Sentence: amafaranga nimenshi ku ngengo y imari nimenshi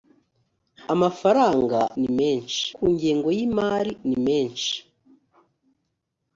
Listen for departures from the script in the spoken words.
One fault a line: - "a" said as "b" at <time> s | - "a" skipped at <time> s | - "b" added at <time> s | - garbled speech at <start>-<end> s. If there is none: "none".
none